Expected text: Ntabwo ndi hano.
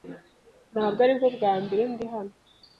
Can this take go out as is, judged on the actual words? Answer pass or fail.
fail